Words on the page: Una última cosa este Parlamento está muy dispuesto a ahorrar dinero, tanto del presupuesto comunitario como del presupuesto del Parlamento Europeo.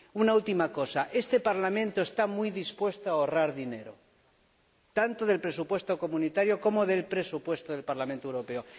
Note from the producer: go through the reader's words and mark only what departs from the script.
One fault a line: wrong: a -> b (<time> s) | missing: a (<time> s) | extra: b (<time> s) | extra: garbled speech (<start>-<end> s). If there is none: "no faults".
no faults